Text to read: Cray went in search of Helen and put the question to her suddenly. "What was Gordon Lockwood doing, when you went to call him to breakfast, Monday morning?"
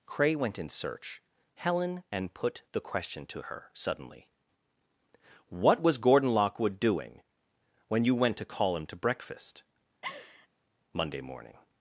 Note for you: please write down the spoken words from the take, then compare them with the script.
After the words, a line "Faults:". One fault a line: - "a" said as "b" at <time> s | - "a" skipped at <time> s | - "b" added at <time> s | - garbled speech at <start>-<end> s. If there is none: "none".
Cray went in search Helen and put the question to her suddenly. "What was Gordon Lockwood doing, when you went to call him to breakfast, Monday morning?"
Faults:
- "of" skipped at 1.2 s